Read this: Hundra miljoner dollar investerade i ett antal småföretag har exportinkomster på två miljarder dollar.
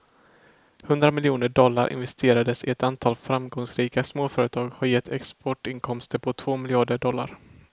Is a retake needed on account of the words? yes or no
yes